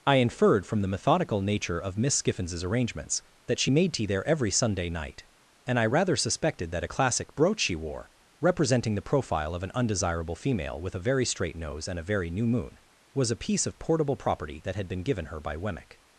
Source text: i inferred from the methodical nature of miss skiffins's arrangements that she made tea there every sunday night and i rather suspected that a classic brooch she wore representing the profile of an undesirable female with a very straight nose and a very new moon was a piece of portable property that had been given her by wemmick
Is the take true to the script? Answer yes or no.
yes